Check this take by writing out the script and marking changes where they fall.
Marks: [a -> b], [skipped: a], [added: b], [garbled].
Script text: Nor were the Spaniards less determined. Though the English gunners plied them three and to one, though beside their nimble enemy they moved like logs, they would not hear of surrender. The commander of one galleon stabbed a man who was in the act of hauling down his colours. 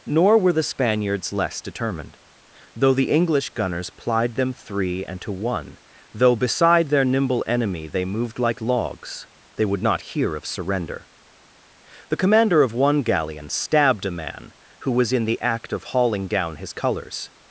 Nor were the Spaniards less determined. Though the English gunners plied them three and to one, though beside their nimble enemy they moved like logs, they would not hear of surrender. The commander of one galleon stabbed a man who was in the act of hauling down his colours.